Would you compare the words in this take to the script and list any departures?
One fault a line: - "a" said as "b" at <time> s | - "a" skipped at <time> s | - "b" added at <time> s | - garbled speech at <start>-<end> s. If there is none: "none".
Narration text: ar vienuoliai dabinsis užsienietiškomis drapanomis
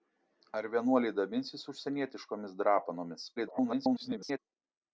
- garbled speech at 3.4-4.4 s